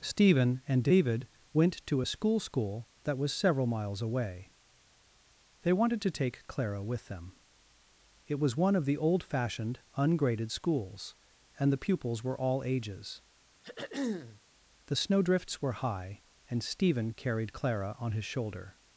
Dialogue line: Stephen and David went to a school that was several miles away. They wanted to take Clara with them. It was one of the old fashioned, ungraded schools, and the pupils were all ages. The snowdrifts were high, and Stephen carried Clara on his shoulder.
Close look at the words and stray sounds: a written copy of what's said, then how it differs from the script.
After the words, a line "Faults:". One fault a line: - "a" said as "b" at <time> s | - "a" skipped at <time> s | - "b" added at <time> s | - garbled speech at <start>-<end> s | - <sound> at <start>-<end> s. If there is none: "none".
Stephen and David went to a school school that was several miles away. They wanted to take Clara with them. It was one of the old fashioned, ungraded schools, and the pupils were all ages. The snowdrifts were high, and Stephen carried Clara on his shoulder.
Faults:
- "school" added at 2.4 s
- throat clearing at 13.6-14.4 s